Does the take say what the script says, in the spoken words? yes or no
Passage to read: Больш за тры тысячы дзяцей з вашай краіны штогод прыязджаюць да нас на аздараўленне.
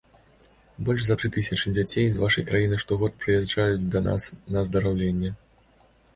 yes